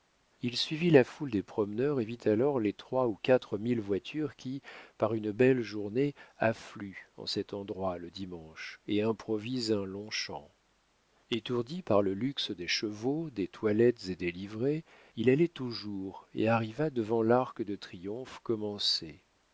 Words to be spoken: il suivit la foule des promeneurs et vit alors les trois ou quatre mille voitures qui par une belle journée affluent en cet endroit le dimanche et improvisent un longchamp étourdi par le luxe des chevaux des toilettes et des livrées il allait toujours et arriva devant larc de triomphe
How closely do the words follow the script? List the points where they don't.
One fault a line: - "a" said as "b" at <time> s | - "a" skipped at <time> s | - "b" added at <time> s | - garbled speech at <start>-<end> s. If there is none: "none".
none